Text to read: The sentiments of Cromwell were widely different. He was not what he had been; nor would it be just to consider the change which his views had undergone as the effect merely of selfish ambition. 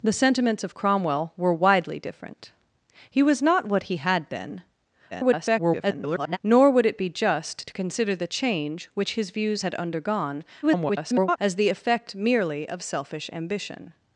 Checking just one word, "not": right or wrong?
right